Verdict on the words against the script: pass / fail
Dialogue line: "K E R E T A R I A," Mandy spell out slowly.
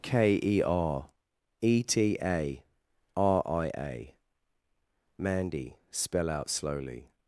pass